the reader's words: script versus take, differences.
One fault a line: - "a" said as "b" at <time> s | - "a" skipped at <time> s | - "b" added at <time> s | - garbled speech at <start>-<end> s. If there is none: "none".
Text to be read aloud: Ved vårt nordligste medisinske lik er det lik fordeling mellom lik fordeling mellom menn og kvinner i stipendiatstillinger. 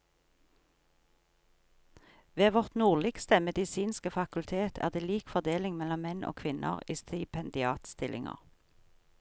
- "lik" said as "fakultet" at 4.1 s
- "lik fordeling mellom" skipped at 6.0 s